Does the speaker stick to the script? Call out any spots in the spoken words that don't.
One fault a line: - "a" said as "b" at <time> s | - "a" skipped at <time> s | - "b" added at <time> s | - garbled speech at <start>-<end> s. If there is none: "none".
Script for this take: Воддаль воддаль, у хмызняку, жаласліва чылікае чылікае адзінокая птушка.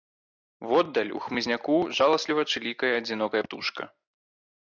- "воддаль" skipped at 1.1 s
- "чылікае" skipped at 2.9 s